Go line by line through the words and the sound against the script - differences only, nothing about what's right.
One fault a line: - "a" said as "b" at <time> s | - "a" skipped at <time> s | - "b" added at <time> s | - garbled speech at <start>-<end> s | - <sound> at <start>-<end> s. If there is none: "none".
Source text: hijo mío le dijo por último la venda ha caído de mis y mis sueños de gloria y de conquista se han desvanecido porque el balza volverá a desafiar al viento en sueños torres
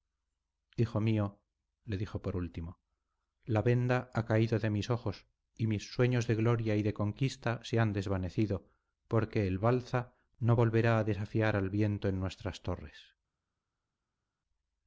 - "ojos" added at 4.9 s
- "no" added at 10.4 s
- "sueños" said as "nuestras" at 12.2 s